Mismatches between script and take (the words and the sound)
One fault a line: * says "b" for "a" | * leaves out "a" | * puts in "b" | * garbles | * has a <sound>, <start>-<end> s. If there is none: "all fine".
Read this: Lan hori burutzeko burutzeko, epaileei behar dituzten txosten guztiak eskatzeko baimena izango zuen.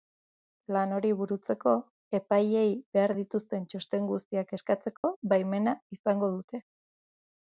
* leaves out "burutzeko"
* has a dropout, 5.0-5.0 s
* says "dute" for "zuen"